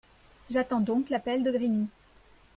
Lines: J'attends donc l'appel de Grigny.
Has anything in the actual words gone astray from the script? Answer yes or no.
no